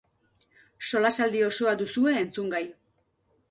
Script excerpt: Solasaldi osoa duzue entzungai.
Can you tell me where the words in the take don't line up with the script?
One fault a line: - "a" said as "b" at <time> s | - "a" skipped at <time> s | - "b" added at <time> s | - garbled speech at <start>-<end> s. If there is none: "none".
none